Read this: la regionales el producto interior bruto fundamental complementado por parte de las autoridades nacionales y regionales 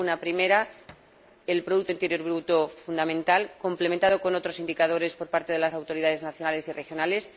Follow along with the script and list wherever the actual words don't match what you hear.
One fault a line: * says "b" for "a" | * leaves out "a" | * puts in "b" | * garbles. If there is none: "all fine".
* says "primera" for "regionales"
* puts in "con otros indicadores"